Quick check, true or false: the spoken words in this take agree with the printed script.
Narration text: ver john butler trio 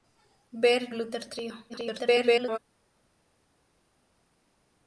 false